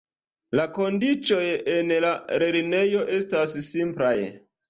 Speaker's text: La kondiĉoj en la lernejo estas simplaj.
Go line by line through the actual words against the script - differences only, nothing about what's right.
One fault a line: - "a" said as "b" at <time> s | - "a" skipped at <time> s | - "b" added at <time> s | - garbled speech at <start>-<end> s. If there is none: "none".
none